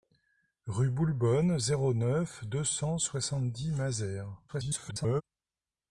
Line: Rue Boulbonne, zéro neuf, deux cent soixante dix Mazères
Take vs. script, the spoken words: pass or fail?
fail